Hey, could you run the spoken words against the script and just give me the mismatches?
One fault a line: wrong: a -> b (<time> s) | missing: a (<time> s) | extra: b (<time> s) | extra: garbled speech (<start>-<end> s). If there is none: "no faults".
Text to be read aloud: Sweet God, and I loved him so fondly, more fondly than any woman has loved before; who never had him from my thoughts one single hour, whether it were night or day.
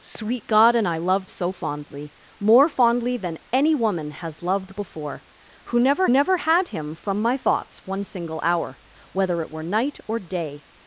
missing: him (1.3 s)
extra: never (6.1 s)